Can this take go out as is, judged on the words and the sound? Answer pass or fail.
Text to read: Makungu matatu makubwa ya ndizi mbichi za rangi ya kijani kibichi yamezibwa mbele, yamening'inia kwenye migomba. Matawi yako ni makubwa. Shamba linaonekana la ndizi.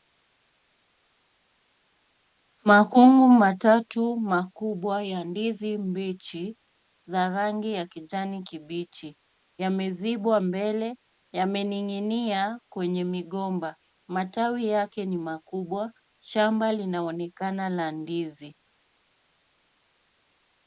fail